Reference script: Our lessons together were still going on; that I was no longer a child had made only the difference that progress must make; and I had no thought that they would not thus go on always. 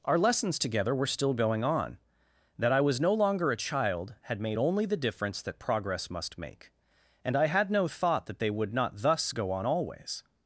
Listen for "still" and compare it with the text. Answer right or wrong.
right